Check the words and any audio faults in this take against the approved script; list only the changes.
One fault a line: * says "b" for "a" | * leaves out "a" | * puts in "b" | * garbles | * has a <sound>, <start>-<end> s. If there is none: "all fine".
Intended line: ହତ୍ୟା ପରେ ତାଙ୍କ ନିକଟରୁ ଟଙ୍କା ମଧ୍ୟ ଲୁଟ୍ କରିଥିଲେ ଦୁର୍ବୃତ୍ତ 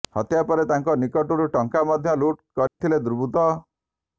* has a dropout, 2.7-2.8 s